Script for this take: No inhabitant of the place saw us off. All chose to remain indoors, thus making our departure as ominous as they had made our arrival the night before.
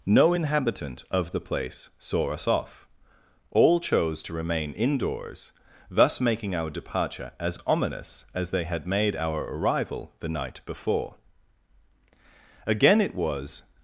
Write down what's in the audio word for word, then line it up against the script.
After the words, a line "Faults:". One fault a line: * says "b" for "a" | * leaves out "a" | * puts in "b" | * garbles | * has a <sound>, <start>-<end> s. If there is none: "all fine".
No inhabitant of the place saw us off. All chose to remain indoors, thus making our departure as ominous as they had made our arrival the night before. Again it was
Faults:
* puts in "Again it was"